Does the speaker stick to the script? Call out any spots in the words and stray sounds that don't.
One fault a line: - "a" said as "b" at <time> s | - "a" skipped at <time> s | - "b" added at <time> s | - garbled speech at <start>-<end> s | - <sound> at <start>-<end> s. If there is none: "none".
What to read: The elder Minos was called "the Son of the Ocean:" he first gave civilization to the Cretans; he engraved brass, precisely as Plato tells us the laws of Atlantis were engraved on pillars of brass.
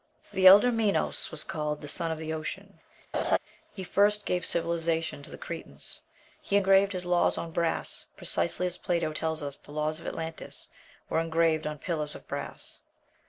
- laugh at 3.1-3.4 s
- "his laws on" added at 6.9 s